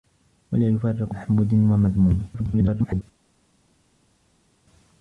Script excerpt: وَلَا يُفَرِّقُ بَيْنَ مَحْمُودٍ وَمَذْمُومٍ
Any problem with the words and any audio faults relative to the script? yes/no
yes